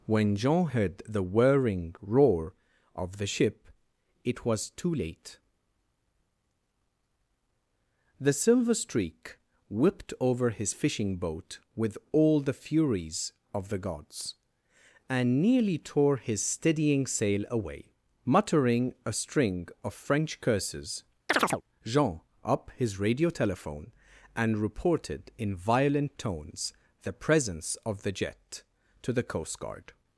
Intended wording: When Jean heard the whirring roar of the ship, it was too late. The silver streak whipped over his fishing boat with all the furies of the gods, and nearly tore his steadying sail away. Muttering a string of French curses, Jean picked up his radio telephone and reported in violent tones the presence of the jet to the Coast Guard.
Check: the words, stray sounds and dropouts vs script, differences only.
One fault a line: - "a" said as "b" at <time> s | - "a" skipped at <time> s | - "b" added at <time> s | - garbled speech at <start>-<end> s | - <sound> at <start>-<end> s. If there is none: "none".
- chirp at 21.3-21.6 s
- "picked" skipped at 22.2 s